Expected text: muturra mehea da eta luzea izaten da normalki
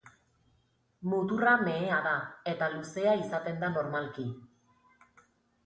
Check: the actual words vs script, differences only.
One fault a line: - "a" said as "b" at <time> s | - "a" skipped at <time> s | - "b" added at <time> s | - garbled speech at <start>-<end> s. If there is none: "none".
none